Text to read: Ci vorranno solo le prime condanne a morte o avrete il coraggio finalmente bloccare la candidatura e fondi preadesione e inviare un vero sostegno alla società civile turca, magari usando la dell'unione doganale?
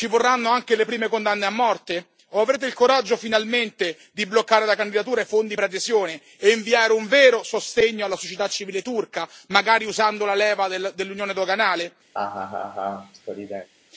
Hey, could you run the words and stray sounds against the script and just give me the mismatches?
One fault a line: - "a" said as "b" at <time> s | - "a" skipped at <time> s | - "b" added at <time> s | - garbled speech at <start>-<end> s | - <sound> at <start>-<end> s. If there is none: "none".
- "solo" said as "anche" at 0.5 s
- "di" added at 4.1 s
- "leva" added at 10.3 s
- laugh at 12.1-13.7 s